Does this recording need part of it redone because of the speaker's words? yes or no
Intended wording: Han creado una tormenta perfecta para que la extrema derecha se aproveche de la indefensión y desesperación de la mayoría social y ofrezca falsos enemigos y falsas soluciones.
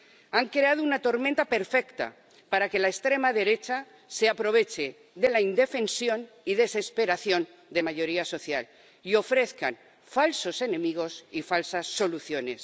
yes